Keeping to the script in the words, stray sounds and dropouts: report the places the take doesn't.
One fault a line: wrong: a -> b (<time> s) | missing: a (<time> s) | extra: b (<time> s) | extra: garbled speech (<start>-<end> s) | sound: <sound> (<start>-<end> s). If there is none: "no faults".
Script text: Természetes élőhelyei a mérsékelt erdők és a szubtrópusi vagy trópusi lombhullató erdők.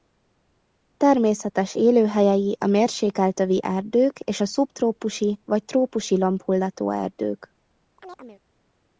extra: övi (3.4 s)
sound: chirp (8.0-8.4 s)